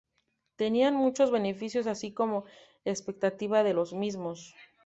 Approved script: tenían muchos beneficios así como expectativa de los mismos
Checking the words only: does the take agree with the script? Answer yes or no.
yes